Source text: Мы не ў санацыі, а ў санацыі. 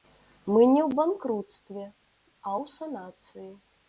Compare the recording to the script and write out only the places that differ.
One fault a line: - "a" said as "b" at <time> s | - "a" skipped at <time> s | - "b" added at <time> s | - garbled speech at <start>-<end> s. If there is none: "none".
- "санацыі" said as "банкруцтве" at 1.0 s